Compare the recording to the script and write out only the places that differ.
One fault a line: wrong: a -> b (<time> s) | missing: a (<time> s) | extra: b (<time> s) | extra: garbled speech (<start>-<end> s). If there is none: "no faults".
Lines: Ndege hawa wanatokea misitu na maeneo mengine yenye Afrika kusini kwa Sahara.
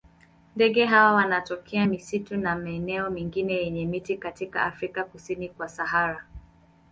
extra: miti katika (3.9 s)